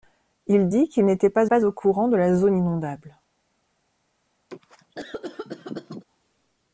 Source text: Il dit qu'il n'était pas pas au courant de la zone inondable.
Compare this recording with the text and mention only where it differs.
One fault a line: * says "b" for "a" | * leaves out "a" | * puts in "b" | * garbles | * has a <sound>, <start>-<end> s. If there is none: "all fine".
* has a cough, 4.5-6.0 s